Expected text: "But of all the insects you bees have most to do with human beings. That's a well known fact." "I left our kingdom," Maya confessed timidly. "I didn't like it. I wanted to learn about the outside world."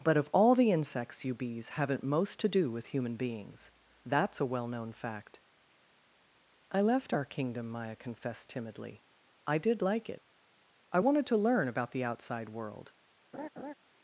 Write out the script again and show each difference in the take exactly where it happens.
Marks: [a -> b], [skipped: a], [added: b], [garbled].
"But of all the insects you bees [have -> haven't] most to do with human beings. That's a well known fact." "I left our kingdom," Maya confessed timidly. "I [didn't -> did] like it. I wanted to learn about the outside world."